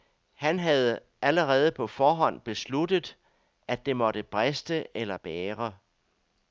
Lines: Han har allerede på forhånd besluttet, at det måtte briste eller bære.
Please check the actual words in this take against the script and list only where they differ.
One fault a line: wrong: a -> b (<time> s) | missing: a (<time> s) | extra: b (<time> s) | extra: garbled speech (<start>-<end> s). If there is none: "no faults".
wrong: har -> havde (0.6 s)